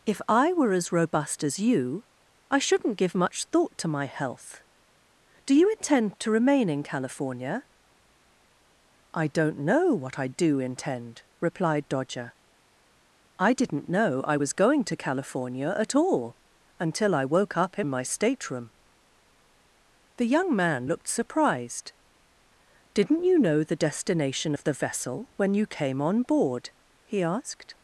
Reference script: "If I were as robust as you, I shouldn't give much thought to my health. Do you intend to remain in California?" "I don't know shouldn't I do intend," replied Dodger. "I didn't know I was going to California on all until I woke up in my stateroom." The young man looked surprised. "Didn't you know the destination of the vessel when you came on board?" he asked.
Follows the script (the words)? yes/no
no